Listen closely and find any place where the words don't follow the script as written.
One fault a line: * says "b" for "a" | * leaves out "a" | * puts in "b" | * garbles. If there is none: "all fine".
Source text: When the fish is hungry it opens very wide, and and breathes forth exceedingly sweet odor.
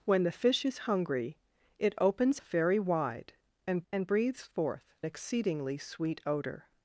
all fine